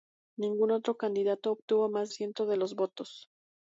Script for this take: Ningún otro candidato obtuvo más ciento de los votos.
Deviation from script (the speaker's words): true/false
false